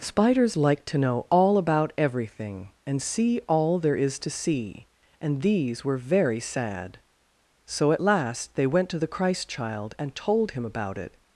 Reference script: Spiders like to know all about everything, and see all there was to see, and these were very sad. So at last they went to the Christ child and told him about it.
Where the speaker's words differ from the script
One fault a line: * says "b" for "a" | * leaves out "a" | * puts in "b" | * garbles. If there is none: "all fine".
* says "is" for "was"